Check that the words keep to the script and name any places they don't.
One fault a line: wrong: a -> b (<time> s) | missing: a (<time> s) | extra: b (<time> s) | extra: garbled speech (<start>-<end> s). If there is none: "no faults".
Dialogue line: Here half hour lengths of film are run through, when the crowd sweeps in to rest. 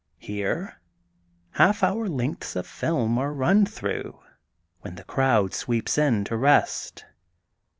no faults